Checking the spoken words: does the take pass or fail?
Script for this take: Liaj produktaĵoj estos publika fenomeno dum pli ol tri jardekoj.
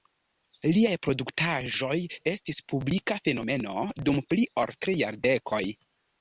fail